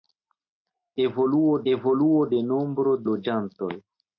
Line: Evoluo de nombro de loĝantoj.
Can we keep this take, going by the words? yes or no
no